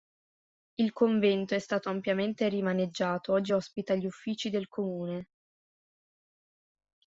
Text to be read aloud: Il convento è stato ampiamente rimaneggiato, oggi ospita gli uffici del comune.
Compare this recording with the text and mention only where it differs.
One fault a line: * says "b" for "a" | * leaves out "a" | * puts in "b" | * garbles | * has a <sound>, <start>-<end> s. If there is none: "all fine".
all fine